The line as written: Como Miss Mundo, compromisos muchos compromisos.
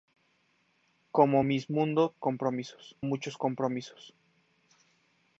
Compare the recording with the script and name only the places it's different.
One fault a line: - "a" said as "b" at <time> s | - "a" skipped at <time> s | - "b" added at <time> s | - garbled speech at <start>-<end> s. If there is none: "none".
none